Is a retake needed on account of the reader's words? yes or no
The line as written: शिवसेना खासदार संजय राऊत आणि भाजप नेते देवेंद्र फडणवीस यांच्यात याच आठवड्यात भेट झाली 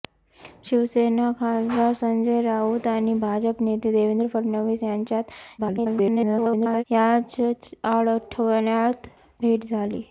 yes